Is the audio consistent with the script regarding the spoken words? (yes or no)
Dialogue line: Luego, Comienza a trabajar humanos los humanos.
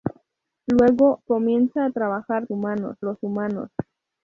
yes